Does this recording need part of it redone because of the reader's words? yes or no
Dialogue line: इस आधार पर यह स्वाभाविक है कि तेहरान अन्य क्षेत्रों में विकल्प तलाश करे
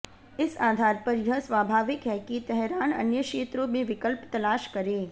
no